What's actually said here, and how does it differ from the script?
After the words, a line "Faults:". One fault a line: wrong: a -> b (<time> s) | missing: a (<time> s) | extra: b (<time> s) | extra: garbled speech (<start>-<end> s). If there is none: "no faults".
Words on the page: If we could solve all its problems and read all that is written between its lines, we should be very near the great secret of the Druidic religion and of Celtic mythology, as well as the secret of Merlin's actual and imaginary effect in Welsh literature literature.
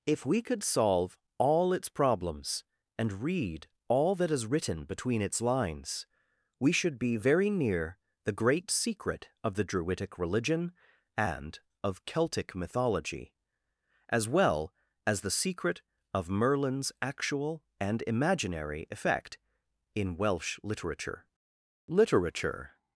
If we could solve all its problems and read all that is written between its lines, we should be very near the great secret of the Druidic religion and of Celtic mythology, as well as the secret of Merlin's actual and imaginary effect in Welsh literature literature.
Faults:
no faults